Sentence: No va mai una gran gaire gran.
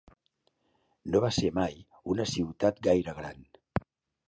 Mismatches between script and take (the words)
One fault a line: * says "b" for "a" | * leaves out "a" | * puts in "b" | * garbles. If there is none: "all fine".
* puts in "ser"
* says "ciutat" for "gran"